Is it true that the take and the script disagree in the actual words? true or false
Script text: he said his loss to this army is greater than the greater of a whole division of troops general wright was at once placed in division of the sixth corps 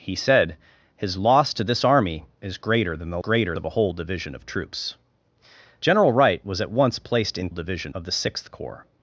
false